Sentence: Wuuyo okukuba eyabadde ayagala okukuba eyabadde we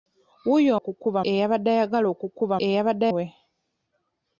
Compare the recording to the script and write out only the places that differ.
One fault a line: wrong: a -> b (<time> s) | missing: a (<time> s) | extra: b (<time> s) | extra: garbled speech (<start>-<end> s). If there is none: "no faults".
no faults